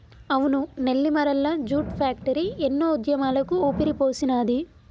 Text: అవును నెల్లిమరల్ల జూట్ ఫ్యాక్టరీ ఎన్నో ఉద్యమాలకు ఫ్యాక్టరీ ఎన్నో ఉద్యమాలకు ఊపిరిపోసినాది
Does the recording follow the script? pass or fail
fail